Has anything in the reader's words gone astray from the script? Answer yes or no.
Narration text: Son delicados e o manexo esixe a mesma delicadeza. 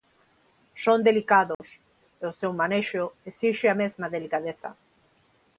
yes